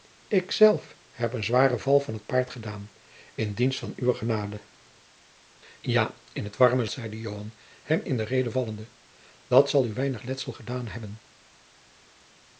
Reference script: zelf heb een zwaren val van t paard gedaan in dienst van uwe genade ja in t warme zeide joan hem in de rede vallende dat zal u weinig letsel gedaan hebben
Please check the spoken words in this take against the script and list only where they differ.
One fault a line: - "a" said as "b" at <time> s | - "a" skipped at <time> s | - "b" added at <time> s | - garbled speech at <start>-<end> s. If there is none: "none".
none